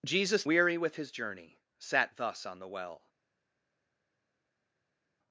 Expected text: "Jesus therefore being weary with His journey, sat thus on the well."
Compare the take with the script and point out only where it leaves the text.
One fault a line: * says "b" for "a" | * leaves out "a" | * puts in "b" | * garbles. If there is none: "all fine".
* leaves out "therefore being"